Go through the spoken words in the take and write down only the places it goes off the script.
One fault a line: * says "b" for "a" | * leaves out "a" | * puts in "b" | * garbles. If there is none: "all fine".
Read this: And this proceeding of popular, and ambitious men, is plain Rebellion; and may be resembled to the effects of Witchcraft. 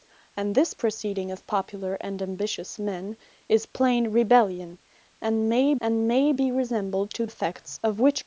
* puts in "and may"
* leaves out "the"